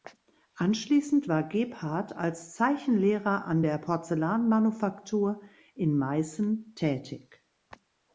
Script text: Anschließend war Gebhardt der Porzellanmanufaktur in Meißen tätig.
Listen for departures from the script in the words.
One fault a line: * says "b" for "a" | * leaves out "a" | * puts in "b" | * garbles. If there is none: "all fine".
* puts in "als Zeichenlehrer an"